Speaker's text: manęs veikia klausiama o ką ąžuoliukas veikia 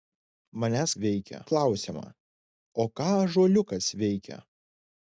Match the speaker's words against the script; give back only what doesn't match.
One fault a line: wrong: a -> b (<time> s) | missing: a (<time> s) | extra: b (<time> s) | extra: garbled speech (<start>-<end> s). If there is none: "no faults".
no faults